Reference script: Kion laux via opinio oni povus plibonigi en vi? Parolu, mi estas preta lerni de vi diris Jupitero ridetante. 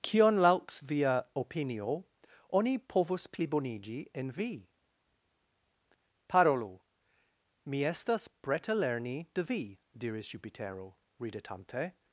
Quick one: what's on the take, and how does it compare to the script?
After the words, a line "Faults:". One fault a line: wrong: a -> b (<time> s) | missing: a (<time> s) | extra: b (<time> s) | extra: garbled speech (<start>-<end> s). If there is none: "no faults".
Kion laux via opinio oni povus plibonigi en vi? Parolu, mi estas preta lerni de vi diris Jupitero ridetante.
Faults:
no faults